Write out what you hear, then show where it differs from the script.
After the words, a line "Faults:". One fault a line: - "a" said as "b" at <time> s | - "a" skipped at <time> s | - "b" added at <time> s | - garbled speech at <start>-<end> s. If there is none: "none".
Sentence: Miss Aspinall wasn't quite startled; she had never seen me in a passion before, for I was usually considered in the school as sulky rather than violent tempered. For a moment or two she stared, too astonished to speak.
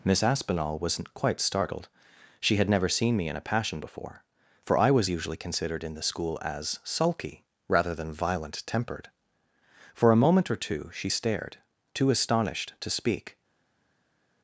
Miss Aspinall wasn't quite startled; she had never seen me in a passion before, for I was usually considered in the school as sulky rather than violent tempered. For a moment or two she stared, too astonished to speak.
Faults:
none